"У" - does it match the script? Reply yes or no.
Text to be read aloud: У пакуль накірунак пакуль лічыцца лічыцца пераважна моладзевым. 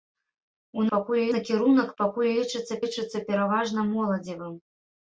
yes